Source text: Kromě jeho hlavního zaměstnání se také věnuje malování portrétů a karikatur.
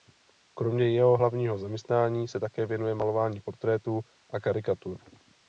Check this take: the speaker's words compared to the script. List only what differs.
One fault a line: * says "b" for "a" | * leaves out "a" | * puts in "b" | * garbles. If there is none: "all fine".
all fine